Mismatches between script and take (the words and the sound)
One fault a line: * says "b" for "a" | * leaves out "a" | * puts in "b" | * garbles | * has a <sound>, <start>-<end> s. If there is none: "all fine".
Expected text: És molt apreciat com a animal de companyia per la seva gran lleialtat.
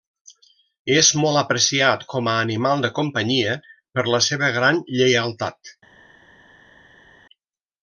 all fine